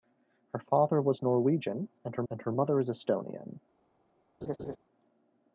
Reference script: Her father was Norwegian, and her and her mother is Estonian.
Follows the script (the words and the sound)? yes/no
no